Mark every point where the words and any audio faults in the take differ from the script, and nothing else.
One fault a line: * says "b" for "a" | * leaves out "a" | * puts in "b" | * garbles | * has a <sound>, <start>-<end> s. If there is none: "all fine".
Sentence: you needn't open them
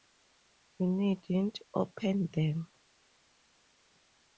all fine